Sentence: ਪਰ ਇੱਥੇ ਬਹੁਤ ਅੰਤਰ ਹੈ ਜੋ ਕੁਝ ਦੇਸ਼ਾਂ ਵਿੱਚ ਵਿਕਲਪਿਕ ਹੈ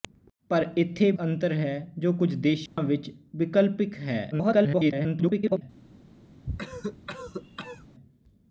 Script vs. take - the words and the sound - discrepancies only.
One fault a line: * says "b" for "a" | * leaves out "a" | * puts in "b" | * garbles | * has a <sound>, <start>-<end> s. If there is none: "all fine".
* leaves out "ਬਹੁਤ"
* has a dropout, 2.7-2.8 s
* garbles
* has a cough, 6.4-7.9 s